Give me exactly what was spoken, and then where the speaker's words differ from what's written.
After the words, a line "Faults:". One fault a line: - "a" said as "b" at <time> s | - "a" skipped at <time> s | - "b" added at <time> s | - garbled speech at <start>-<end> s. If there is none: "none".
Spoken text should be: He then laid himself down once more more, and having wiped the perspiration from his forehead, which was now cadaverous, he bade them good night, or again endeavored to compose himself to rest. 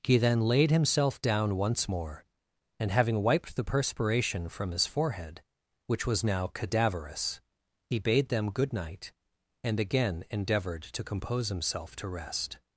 He then laid himself down once more, and having wiped the perspiration from his forehead, which was now cadaverous, he bade them good night, and again endeavored to compose himself to rest.
Faults:
- "more" skipped at 2.2 s
- "or" said as "and" at 9.6 s